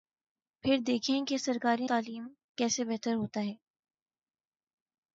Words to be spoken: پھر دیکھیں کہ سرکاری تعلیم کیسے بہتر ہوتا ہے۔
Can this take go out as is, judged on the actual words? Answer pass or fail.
pass